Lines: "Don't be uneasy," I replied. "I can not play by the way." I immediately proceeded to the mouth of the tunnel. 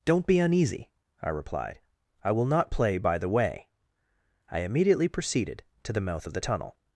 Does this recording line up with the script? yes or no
no